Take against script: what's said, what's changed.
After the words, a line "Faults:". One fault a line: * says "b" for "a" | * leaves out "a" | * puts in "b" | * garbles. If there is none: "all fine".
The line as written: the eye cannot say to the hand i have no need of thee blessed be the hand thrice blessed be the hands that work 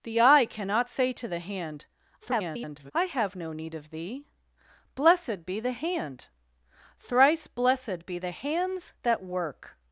the eye cannot say to the hand [garbled] i have no need of thee blessed be the hand thrice blessed be the hands that work
Faults:
* garbles